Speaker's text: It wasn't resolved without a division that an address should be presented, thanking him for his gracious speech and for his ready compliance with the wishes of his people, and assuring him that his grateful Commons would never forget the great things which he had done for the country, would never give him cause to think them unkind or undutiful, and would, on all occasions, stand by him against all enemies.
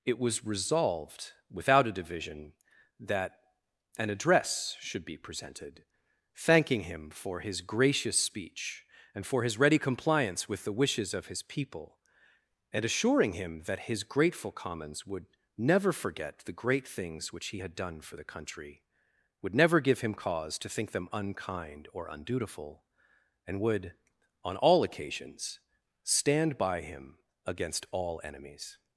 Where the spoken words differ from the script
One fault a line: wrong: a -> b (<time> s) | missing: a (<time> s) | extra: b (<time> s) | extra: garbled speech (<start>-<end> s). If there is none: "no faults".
wrong: wasn't -> was (0.2 s)